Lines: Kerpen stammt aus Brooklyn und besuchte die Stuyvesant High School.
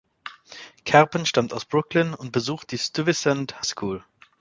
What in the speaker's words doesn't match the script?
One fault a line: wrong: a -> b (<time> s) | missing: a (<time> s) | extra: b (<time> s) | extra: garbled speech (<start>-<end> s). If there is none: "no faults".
missing: High (3.7 s)